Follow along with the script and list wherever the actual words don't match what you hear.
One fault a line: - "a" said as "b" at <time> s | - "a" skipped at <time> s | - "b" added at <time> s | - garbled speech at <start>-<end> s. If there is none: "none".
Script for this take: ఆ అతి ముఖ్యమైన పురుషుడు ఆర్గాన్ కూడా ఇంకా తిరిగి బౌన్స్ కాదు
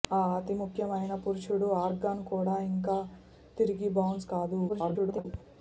- garbled speech at 4.7-5.3 s